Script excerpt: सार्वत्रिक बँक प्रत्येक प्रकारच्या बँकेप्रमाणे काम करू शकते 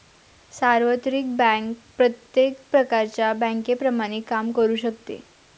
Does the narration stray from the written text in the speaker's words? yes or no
no